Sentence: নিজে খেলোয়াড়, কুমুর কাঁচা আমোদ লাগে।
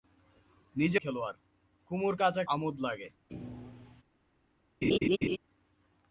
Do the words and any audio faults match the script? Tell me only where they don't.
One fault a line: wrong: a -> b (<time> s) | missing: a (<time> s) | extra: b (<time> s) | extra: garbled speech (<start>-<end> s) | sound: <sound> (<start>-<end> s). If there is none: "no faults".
sound: thud (3.3-4.0 s)
sound: laugh (4.8-5.4 s)